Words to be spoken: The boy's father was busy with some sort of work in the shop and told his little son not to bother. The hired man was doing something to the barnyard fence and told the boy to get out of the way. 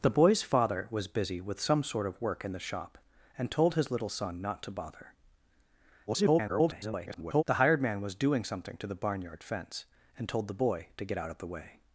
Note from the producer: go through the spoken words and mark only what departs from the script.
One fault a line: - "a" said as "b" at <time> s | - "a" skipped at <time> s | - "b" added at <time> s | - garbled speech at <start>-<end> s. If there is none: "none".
- garbled speech at 6.1-7.4 s